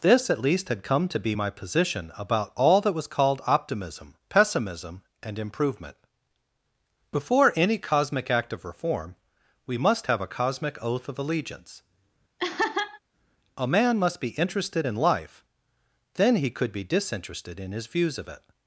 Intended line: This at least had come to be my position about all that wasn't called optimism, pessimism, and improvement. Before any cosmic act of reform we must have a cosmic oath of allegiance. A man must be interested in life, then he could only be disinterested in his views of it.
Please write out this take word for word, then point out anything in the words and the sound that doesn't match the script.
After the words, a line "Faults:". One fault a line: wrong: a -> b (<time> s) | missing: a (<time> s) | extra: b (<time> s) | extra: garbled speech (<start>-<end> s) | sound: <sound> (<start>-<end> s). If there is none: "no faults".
This at least had come to be my position about all that was called optimism, pessimism, and improvement. Before any cosmic act of reform we must have a cosmic oath of allegiance. A man must be interested in life, then he could be disinterested in his views of it.
Faults:
wrong: wasn't -> was (2.9 s)
sound: laugh (12.4-13.0 s)
missing: only (16.7 s)